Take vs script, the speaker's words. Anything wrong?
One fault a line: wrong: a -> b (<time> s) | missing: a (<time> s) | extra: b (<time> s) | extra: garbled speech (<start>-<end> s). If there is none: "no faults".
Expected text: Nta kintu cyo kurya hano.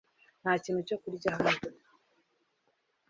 no faults